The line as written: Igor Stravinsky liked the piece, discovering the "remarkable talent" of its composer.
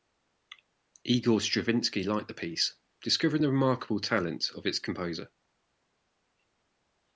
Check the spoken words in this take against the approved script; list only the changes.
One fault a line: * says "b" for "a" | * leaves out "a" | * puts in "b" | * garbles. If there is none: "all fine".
all fine